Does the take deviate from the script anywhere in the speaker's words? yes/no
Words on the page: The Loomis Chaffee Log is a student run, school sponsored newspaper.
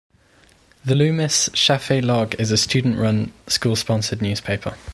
no